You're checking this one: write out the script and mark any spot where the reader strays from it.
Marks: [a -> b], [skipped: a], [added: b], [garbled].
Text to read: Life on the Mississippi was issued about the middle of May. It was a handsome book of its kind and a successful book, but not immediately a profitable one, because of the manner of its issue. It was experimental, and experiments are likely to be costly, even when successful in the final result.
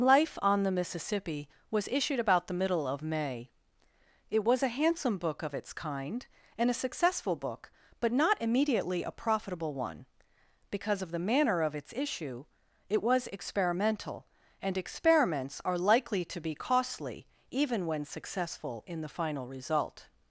Life on the Mississippi was issued about the middle of May. It was a handsome book of its kind and a successful book, but not immediately a profitable one, because of the manner of its issue. It was experimental, and experiments are likely to be costly, even when successful in the final result.